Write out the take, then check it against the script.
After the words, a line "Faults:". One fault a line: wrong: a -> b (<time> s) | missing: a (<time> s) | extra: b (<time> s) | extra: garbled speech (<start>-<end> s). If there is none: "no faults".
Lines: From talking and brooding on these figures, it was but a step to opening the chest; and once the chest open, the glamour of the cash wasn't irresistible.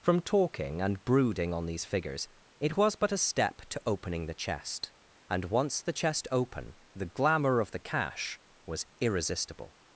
From talking and brooding on these figures, it was but a step to opening the chest; and once the chest open, the glamour of the cash was irresistible.
Faults:
wrong: wasn't -> was (8.7 s)